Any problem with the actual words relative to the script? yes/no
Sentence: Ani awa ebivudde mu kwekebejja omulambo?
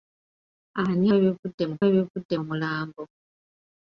yes